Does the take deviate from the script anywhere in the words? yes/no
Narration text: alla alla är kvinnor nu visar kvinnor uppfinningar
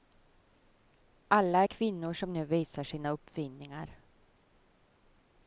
yes